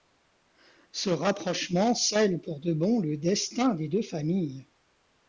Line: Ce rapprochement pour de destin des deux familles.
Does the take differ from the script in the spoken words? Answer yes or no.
yes